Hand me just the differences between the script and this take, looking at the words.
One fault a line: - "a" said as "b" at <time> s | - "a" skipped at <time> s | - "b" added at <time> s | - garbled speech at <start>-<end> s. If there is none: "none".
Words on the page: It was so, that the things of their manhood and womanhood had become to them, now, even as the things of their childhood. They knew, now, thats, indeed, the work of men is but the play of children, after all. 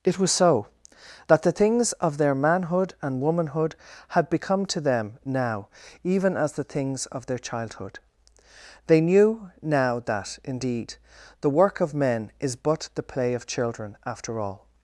- "thats" said as "that" at 10.0 s